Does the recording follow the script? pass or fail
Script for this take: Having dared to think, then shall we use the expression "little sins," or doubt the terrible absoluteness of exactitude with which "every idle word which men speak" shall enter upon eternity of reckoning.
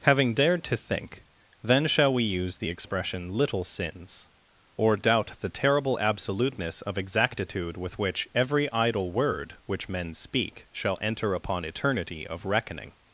pass